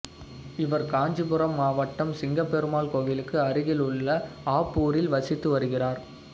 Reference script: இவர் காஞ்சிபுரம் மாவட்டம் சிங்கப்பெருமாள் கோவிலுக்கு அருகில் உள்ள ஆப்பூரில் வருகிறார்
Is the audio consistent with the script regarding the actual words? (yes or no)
no